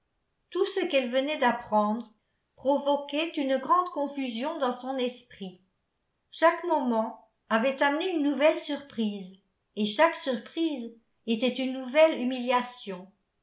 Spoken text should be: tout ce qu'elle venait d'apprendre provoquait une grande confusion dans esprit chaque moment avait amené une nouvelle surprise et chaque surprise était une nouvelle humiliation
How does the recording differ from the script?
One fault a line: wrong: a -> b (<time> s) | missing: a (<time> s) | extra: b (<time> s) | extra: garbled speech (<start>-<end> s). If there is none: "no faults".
extra: son (4.8 s)